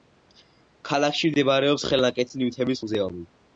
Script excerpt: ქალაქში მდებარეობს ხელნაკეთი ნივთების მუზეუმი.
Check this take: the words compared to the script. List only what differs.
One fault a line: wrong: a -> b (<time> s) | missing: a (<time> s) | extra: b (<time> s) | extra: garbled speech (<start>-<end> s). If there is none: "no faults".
no faults